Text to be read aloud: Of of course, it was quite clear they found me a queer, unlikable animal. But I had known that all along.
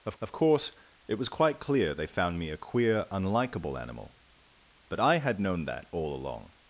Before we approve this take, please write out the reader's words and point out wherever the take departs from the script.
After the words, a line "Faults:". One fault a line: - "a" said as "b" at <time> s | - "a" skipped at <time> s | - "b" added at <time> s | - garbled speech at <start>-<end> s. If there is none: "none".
Of of course, it was quite clear they found me a queer, unlikable animal. But I had known that all along.
Faults:
none